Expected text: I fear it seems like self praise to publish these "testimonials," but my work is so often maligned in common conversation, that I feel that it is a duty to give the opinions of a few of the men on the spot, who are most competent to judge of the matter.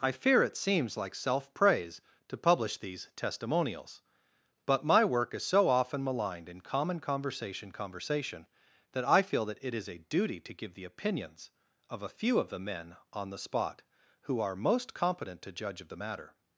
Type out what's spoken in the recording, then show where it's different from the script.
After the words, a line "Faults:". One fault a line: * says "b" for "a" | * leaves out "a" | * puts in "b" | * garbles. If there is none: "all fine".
I fear it seems like self praise to publish these "testimonials," but my work is so often maligned in common conversation conversation, that I feel that it is a duty to give the opinions of a few of the men on the spot, who are most competent to judge of the matter.
Faults:
* puts in "conversation"